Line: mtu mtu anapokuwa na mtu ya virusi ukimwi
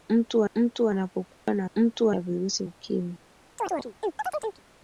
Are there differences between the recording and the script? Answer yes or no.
no